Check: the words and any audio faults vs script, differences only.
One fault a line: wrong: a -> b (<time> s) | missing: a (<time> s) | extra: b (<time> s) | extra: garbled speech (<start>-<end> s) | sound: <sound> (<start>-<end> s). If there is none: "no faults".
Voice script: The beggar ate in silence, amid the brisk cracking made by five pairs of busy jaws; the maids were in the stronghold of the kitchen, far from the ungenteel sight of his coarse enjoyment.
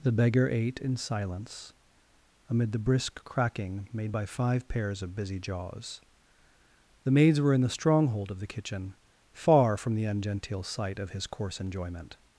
no faults